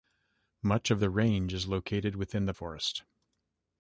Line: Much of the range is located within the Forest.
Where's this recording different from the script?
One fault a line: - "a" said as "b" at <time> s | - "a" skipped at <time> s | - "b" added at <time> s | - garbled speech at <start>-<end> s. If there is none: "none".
none